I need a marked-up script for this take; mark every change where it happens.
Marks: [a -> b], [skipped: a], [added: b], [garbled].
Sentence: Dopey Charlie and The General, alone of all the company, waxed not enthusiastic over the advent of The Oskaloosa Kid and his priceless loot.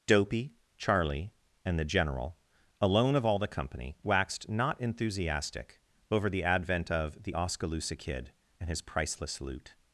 Dopey Charlie and The General, alone of all the company, waxed not enthusiastic over the advent of The Oskaloosa Kid and his priceless loot.